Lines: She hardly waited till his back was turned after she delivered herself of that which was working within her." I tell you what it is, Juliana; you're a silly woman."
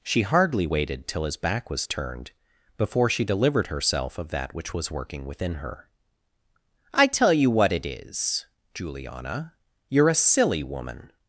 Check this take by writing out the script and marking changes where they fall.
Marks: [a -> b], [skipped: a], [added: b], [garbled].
She hardly waited till his back was turned [after -> before] she delivered herself of that which was working within her." I tell you what it is, Juliana; you're a silly woman."